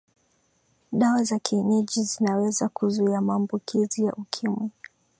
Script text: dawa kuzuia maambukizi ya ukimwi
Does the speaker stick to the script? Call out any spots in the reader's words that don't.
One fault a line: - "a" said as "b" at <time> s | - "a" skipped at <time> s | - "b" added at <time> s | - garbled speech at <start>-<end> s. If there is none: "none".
- "za kienyeji zinaweza" added at 1.2 s